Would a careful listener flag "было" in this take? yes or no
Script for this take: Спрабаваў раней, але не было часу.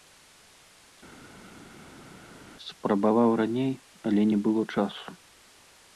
no